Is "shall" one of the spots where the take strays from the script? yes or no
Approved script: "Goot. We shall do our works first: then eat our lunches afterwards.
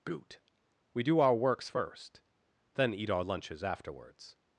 yes